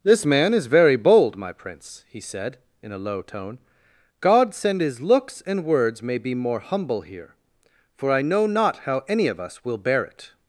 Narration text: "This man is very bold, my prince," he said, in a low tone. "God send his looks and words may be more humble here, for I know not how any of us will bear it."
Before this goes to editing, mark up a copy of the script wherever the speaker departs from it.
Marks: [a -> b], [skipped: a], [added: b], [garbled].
"This man is very bold, my prince," he said, in a low tone. "God send his looks and words may be more humble here, for I know not how any of us will bear it."